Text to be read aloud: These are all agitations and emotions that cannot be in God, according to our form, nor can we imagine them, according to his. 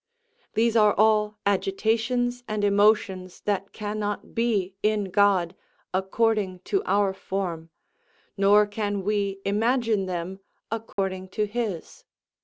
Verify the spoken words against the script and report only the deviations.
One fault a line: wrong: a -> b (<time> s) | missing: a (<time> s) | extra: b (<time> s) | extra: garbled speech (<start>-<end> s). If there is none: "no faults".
no faults